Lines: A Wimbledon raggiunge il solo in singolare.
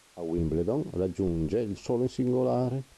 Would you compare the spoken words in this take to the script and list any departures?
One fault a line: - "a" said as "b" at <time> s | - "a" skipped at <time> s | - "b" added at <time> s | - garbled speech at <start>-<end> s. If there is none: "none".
none